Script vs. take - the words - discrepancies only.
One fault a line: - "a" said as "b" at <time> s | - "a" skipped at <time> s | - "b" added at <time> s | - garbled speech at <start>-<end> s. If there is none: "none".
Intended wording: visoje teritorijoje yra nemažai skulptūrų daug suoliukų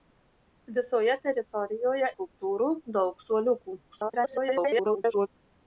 - "yra nemažai" skipped at 2.1 s
- garbled speech at 3.9-5.3 s